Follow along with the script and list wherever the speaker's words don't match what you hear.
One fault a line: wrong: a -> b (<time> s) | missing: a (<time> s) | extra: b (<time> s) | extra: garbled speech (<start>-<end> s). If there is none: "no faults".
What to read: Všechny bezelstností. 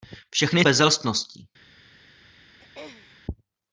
no faults